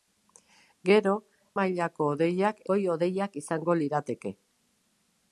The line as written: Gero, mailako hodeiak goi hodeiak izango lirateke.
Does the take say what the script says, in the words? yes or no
yes